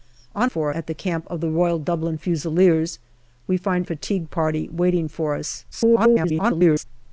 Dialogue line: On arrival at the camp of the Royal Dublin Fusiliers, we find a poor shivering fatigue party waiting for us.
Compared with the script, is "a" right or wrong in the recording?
wrong